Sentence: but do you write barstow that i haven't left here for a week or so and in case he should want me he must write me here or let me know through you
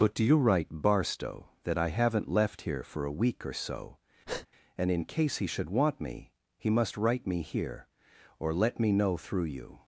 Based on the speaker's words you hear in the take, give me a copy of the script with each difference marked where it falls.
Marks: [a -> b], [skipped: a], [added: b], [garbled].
but do you write barstow that i haven't left here for a week or so and in case he should want me he must write me here or let me know through you